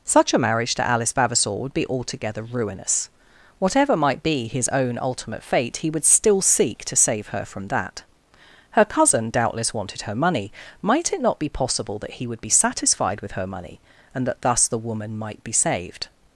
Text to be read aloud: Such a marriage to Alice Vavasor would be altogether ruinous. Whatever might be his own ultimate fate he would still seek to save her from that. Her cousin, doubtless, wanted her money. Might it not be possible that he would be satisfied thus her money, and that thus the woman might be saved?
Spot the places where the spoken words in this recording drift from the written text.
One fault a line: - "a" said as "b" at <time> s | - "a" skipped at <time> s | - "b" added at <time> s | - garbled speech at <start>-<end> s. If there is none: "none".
- "thus" said as "with" at 13.2 s